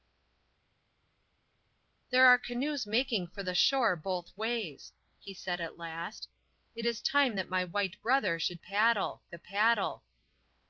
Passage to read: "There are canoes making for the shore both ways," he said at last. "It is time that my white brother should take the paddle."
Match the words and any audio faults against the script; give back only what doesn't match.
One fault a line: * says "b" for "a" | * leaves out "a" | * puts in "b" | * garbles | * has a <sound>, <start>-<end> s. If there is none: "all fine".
* says "paddle" for "take"